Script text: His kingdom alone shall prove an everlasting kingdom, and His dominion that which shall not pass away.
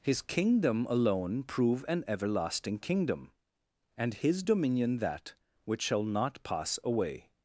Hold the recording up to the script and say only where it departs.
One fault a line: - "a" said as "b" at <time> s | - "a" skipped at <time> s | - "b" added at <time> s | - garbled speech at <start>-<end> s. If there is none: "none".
- "shall" skipped at 1.4 s